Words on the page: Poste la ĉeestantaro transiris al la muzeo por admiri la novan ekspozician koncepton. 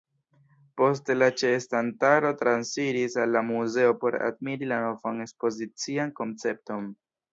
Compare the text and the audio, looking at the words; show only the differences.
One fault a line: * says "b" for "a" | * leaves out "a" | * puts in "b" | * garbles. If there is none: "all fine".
all fine